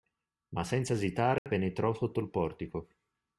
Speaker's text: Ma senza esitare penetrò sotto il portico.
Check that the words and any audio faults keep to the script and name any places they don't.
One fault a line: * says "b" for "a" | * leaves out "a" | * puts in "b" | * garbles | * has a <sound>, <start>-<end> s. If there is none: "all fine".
* has a dropout, 1.4-1.5 s